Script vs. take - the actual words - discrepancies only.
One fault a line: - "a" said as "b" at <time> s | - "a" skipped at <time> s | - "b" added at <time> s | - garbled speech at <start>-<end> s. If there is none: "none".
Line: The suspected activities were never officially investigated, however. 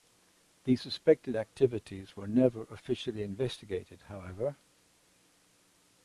none